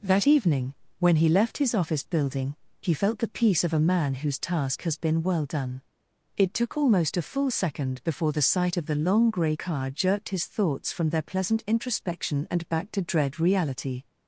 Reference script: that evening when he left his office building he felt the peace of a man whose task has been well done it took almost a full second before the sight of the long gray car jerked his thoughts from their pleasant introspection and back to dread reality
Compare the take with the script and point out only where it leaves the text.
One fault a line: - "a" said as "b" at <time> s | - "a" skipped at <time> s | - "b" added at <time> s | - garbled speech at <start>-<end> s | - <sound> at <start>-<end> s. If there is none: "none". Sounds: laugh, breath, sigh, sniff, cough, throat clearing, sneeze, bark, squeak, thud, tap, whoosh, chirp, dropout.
none